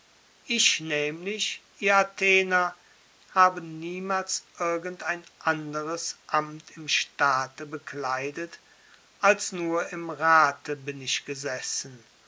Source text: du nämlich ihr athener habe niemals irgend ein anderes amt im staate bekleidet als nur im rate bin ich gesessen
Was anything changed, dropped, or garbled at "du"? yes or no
yes